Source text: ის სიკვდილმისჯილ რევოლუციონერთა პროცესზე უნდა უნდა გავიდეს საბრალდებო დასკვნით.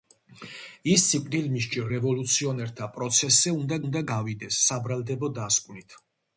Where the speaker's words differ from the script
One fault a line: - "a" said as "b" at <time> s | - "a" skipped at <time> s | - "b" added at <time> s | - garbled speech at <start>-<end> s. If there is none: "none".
none